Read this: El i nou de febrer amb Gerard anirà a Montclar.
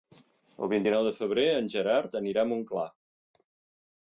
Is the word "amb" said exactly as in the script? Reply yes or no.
no